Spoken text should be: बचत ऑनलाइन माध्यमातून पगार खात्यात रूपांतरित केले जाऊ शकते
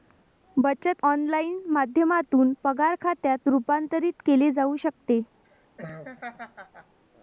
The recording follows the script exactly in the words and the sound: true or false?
false